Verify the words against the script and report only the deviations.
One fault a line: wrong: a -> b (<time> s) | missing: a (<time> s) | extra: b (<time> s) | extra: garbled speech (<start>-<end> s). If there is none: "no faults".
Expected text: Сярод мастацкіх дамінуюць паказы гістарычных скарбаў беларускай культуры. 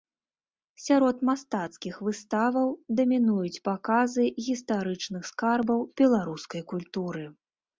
extra: выставаў (2.1 s)